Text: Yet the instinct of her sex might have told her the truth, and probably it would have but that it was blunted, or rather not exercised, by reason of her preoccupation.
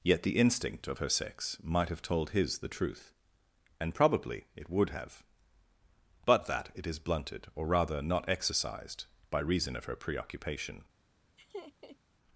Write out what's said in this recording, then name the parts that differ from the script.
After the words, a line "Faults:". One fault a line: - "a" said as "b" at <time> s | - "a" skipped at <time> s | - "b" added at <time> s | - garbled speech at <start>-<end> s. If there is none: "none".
Yet the instinct of her sex might have told his the truth, and probably it would have but that it is blunted, or rather not exercised, by reason of her preoccupation.
Faults:
- "her" said as "his" at 2.3 s
- "was" said as "is" at 6.9 s